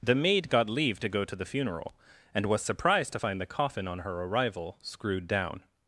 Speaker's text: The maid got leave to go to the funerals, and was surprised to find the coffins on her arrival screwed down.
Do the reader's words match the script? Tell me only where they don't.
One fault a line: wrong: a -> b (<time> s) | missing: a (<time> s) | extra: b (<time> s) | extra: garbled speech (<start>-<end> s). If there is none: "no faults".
wrong: funerals -> funeral (1.4 s)
wrong: coffins -> coffin (3.5 s)